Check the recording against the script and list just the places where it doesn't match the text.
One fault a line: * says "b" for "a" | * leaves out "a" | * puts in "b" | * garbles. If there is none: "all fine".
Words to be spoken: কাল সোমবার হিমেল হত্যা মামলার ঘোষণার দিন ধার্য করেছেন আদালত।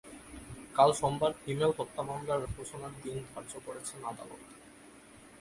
all fine